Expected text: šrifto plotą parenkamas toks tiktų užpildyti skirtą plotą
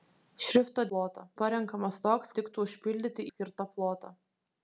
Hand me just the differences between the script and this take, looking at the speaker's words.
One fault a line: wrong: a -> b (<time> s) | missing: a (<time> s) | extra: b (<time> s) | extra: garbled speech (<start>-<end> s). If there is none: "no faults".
no faults